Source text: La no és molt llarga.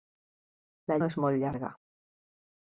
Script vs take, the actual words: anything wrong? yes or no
no